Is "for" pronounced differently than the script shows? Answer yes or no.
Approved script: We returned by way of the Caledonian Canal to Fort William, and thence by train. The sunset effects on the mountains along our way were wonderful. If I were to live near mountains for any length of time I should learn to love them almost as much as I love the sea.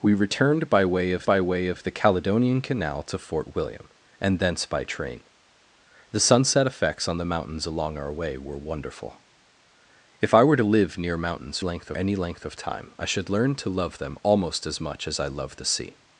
yes